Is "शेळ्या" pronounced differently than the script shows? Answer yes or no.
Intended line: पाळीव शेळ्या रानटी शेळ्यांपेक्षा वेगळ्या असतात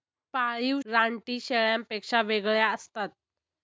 yes